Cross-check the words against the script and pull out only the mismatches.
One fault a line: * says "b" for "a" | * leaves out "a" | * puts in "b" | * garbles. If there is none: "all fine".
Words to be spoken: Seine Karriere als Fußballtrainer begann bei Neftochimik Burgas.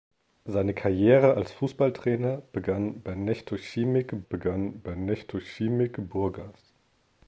* puts in "begann bei Neftochimik"